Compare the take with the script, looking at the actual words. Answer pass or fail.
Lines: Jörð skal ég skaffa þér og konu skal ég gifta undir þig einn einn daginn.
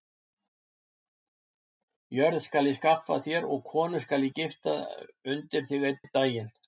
pass